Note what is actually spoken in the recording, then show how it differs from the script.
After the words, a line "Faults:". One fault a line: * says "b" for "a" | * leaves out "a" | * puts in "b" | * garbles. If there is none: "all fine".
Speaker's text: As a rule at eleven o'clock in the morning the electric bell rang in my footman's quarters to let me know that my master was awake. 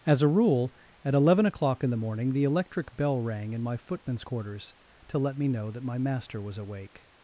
As a rule at eleven o'clock in the morning the electric bell rang in my footman's quarters to let me know that my master was awake.
Faults:
all fine